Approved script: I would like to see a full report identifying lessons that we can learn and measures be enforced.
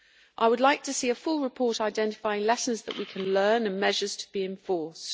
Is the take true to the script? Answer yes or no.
no